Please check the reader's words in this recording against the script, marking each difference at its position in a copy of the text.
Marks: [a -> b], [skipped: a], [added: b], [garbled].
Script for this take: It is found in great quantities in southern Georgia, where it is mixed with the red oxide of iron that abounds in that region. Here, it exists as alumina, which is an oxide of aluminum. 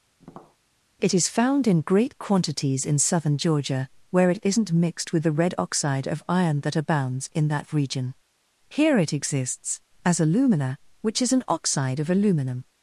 It is found in great quantities in southern Georgia, where it [is -> isn't] mixed with the red oxide of iron that abounds in that region. Here, it exists as alumina, which is an oxide of aluminum.